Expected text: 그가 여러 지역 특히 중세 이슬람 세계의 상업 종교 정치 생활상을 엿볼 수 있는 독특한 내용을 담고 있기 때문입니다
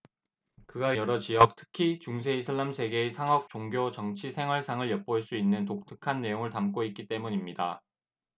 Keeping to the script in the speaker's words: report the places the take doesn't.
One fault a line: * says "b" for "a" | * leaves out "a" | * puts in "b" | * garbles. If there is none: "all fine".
all fine